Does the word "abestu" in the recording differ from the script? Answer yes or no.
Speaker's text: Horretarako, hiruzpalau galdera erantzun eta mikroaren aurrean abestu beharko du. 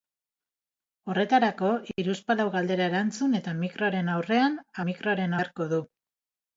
yes